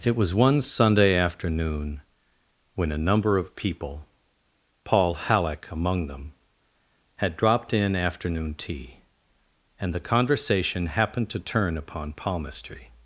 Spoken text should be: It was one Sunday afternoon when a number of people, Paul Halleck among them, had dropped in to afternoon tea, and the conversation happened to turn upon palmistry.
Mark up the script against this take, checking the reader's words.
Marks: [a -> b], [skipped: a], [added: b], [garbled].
It was one Sunday afternoon when a number of people, Paul Halleck among them, had dropped in [skipped: to] afternoon tea, and the conversation happened to turn upon palmistry.